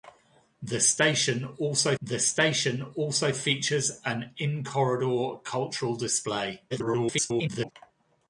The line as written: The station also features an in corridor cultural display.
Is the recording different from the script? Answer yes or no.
yes